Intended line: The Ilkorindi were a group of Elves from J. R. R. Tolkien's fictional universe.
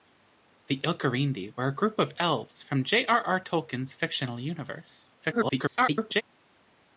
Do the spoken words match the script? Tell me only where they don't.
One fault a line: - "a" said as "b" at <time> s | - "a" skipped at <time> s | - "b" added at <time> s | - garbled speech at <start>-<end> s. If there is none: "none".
- garbled speech at 5.2-6.2 s